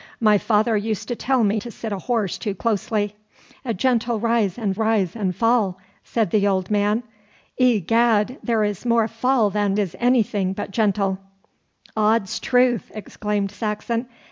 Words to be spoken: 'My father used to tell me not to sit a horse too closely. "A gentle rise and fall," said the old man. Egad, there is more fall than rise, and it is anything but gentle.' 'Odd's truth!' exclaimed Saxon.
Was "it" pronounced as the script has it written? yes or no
no